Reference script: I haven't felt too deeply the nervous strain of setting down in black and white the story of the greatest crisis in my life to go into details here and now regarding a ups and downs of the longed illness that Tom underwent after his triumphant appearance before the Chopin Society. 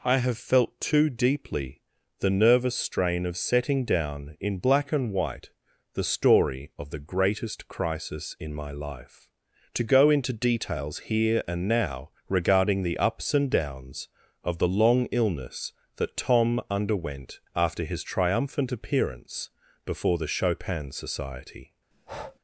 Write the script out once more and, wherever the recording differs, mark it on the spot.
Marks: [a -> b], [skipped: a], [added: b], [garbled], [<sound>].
I [haven't -> have] felt too deeply the nervous strain of setting down in black and white the story of the greatest crisis in my life to go into details here and now regarding [a -> the] ups and downs of the [longed -> long] illness that Tom underwent after his triumphant appearance before the Chopin Society. [breath]